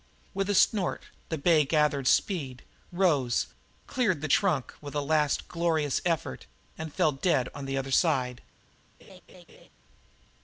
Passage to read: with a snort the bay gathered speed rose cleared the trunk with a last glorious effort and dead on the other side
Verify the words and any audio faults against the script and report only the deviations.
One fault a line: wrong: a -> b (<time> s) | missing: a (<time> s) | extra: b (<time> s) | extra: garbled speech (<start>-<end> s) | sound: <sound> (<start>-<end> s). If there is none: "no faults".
extra: fell (6.9 s)
sound: laugh (9.0-9.7 s)